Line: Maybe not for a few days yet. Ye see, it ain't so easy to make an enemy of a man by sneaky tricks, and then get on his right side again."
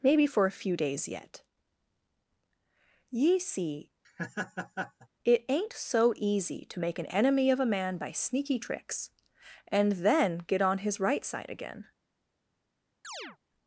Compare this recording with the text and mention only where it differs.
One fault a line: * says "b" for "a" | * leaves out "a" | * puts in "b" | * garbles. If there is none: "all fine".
* leaves out "not"